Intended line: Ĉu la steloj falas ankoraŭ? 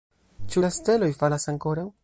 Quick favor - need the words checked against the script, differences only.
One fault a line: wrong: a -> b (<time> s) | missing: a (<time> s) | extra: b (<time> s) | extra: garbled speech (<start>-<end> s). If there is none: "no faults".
no faults